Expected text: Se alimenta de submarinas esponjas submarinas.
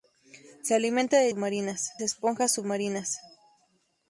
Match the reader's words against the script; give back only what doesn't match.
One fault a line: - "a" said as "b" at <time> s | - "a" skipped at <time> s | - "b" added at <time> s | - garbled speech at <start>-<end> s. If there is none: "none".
none